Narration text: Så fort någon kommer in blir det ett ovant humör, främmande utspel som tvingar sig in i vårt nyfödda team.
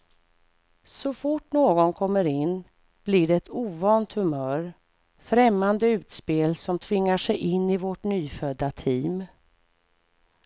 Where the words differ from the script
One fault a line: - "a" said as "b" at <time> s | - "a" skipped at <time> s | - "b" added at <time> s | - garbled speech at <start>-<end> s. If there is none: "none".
none